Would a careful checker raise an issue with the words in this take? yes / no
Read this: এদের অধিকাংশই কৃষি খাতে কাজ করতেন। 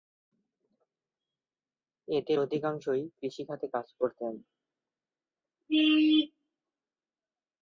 no